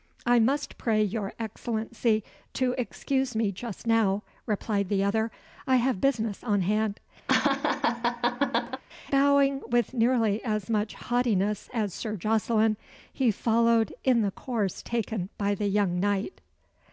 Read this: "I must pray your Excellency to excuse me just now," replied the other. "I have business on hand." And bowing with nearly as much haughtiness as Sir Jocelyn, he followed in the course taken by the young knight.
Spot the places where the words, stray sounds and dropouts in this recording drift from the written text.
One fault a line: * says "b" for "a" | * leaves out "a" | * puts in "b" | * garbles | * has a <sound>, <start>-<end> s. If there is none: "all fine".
* leaves out "And"
* has a laugh, 7.3-8.8 s